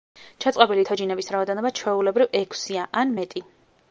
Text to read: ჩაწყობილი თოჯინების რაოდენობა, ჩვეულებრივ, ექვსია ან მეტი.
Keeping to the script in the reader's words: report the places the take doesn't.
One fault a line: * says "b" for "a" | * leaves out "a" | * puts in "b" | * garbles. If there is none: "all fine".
all fine